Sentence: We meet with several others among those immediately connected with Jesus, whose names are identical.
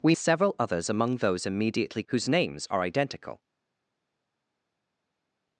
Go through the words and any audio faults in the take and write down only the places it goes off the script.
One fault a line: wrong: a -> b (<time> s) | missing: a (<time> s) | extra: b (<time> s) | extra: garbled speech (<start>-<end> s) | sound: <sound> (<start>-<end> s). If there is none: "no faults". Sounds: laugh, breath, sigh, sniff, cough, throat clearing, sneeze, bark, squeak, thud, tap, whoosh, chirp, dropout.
missing: meet with (0.1 s)
missing: connected with Jesus (2.0 s)